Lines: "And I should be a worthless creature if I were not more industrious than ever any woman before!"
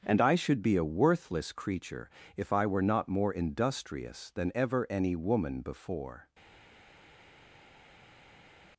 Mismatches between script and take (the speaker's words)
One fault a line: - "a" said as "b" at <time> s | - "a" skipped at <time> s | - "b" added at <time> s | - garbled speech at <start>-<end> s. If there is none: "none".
none